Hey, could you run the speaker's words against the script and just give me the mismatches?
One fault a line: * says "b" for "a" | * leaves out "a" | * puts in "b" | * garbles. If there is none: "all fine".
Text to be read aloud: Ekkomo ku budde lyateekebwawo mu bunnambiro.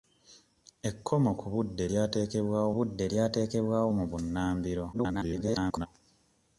* puts in "budde lyateekebwawo"
* garbles